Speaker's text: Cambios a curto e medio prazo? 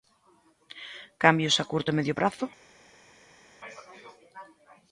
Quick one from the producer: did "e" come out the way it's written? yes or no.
yes